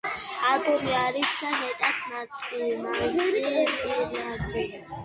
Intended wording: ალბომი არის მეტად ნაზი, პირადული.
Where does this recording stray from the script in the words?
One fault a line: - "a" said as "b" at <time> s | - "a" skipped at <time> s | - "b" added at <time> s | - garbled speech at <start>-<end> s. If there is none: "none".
none